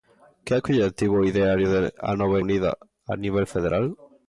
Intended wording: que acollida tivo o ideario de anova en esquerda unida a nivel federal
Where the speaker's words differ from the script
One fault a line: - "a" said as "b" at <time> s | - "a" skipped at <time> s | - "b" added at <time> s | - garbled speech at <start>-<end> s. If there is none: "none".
- "en esquerda" skipped at 2.4 s